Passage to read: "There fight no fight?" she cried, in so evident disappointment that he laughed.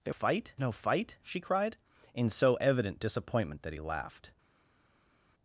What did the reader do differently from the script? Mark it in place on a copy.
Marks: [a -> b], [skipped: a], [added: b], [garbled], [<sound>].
"There fight no fight?" she cried, in so evident disappointment that he laughed.